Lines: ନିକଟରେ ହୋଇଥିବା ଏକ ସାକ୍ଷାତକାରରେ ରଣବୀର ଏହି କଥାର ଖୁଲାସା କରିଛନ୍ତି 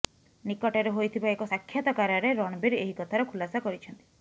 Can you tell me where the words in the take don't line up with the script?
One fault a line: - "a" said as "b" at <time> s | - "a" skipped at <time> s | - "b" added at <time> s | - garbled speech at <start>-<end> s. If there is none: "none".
none